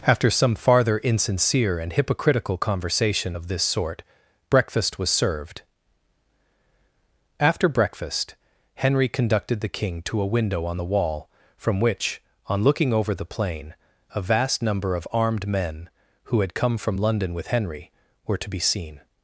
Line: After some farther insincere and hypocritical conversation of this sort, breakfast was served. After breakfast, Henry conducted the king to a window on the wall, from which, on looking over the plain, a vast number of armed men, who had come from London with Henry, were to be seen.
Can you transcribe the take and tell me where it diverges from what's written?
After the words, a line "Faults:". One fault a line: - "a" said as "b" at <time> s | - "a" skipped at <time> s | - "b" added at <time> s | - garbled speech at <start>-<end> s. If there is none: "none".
After some farther insincere and hypocritical conversation of this sort, breakfast was served. After breakfast, Henry conducted the king to a window on the wall, from which, on looking over the plain, a vast number of armed men, who had come from London with Henry, were to be seen.
Faults:
none